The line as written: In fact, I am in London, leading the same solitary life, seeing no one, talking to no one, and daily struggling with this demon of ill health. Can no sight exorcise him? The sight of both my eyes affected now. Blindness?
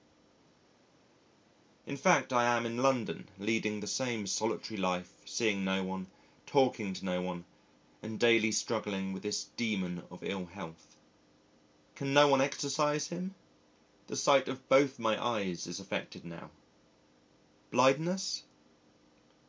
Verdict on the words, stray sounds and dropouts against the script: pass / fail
fail